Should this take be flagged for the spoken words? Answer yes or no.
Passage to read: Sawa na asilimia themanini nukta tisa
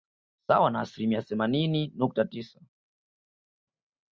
no